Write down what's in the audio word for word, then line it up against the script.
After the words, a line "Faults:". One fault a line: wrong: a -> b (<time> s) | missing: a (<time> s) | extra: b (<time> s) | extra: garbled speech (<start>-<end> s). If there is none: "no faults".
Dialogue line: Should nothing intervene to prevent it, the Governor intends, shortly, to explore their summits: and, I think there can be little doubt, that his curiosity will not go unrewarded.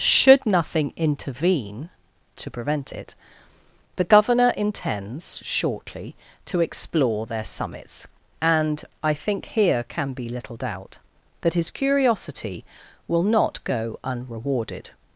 Should nothing intervene to prevent it, the Governor intends, shortly, to explore their summits: and, I think here can be little doubt, that his curiosity will not go unrewarded.
Faults:
wrong: there -> here (9.4 s)